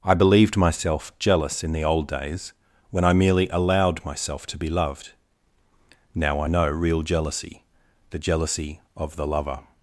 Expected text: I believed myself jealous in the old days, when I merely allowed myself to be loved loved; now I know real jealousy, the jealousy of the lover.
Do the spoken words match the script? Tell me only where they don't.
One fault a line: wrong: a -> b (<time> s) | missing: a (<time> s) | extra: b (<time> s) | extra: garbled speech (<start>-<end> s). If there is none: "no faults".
missing: loved (5.1 s)